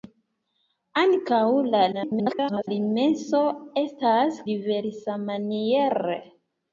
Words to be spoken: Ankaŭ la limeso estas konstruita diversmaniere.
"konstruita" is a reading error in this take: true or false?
true